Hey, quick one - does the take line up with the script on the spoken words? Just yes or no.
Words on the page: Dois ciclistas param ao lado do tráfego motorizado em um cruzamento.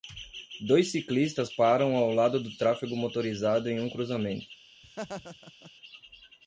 yes